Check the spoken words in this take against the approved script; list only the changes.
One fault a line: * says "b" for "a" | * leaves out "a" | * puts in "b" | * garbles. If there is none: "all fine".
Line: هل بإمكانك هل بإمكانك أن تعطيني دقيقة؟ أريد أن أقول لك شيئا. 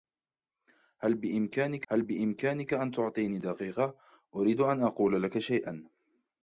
all fine